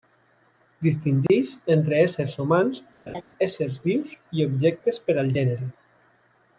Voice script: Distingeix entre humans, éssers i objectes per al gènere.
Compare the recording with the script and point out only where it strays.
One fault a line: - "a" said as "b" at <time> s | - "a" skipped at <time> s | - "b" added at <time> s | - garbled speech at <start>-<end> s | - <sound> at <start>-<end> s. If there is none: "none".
- dropout at 1.3-1.3 s
- "éssers" added at 2.0 s
- laugh at 3.1-3.2 s
- "vius" added at 3.9 s